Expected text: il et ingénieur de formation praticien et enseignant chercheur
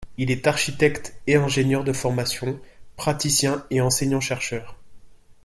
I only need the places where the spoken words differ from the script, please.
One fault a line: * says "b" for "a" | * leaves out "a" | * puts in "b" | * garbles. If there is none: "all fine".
* puts in "est architecte"